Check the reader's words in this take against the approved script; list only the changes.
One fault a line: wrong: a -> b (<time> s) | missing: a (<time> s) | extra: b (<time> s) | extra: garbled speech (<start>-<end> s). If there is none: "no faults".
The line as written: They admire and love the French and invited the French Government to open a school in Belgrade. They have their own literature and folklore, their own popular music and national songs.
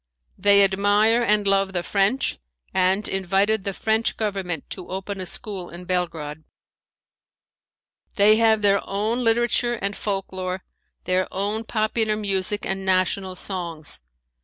no faults